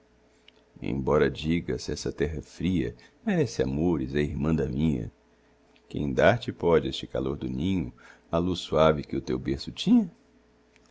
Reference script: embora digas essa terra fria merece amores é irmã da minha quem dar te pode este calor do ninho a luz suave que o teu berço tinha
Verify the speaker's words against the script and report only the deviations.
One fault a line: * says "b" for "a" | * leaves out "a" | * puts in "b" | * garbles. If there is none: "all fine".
all fine